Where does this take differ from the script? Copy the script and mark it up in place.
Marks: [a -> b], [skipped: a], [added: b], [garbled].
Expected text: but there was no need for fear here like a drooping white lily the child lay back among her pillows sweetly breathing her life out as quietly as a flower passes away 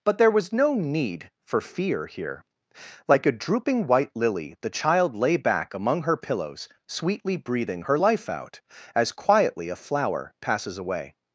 but there was no need for fear here like a drooping white lily the child lay back among her pillows sweetly breathing her life out as quietly [skipped: as] a flower passes away